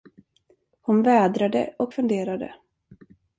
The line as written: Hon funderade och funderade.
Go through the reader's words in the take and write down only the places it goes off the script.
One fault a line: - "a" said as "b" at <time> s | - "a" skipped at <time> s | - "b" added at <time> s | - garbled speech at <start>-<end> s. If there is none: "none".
- "funderade" said as "vädrade" at 1.0 s